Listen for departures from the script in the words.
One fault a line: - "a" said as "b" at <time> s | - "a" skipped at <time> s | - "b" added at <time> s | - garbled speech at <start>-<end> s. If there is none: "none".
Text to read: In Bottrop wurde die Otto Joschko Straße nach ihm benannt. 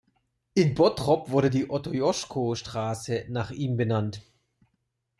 none